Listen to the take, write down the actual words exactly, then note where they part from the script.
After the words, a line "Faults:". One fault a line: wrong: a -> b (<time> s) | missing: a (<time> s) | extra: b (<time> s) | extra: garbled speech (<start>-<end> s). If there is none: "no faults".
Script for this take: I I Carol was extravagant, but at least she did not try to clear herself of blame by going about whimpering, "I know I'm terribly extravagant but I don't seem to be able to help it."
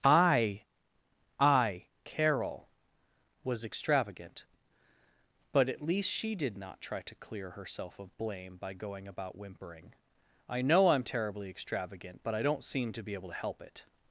I I Carol was extravagant, but at least she did not try to clear herself of blame by going about whimpering, "I know I'm terribly extravagant but I don't seem to be able to help it."
Faults:
no faults